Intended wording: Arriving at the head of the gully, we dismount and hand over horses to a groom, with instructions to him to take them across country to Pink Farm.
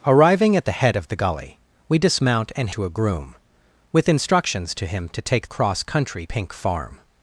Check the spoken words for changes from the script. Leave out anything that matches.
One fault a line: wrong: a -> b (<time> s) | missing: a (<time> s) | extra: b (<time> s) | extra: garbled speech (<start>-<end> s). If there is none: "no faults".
missing: hand over horses (2.7 s)
missing: them (5.5 s)
missing: to (6.3 s)